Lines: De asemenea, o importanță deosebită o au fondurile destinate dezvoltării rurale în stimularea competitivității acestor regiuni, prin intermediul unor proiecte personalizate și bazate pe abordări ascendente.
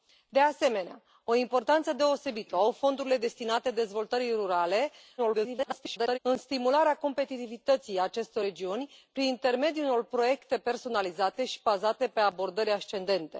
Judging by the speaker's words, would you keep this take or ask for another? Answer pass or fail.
fail